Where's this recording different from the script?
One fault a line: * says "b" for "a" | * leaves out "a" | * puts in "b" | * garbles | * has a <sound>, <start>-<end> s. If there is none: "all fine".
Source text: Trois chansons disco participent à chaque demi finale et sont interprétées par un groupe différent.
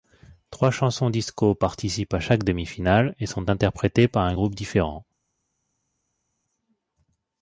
all fine